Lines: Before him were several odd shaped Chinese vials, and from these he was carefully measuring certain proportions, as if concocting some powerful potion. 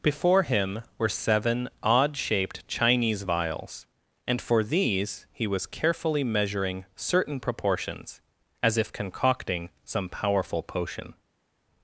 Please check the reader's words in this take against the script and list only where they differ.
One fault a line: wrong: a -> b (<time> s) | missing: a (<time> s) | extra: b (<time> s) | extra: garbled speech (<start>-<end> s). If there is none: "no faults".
wrong: several -> seven (1.1 s)
wrong: from -> for (4.4 s)